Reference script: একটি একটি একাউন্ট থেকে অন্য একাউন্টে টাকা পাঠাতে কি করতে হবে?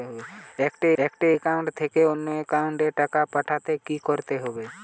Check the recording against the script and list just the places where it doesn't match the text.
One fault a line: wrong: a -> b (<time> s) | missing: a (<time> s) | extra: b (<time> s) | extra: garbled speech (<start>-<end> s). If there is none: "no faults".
no faults